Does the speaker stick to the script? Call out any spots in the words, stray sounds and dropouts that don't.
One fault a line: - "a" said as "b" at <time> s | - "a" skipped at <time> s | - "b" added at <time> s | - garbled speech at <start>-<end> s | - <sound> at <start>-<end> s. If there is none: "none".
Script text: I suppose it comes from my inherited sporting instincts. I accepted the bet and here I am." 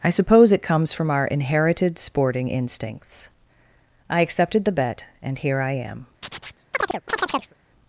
- "my" said as "our" at 1.1 s
- chirp at 6.2-7.5 s